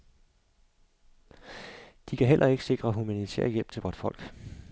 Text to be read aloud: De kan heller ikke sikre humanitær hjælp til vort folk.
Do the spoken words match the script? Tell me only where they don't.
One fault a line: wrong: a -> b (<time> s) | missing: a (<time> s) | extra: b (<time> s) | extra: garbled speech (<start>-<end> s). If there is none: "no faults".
no faults